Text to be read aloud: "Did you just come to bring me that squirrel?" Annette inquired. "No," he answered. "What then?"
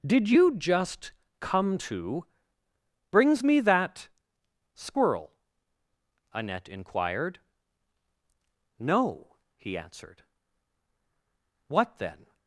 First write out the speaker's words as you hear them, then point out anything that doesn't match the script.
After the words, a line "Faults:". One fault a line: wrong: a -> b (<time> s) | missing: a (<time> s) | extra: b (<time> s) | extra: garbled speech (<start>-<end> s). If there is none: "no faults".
"Did you just come to brings me that squirrel?" Annette inquired. "No," he answered. "What then?"
Faults:
wrong: bring -> brings (3.1 s)